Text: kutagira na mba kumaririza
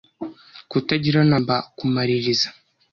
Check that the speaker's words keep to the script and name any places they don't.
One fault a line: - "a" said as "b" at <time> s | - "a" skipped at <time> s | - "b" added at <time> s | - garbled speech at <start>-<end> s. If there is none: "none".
none